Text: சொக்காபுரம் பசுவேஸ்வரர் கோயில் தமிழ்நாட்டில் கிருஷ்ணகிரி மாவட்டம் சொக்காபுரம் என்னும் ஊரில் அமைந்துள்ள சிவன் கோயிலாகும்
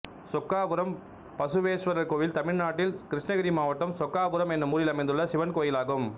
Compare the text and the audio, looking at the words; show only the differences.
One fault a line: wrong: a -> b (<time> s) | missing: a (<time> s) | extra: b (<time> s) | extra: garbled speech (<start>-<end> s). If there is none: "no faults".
no faults